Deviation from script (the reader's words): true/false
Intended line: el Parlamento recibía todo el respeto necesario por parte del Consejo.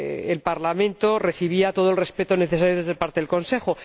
false